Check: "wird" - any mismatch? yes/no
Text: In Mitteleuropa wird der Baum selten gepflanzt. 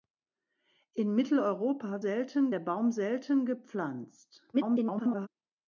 yes